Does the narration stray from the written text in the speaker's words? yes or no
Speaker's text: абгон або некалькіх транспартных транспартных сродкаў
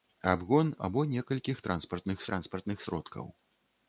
no